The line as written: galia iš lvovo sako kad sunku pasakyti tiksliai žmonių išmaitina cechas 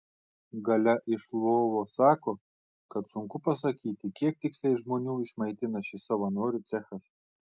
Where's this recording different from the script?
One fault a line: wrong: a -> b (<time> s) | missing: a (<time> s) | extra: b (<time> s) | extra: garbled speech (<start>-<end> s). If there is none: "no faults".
extra: kiek (4.2 s)
extra: šis savanorių (5.9 s)